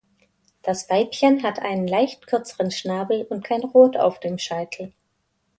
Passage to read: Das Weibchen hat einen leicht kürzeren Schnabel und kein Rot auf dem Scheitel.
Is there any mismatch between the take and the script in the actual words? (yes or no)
no